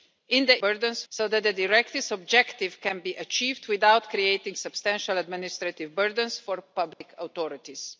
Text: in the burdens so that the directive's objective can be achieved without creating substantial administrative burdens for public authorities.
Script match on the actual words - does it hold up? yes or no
yes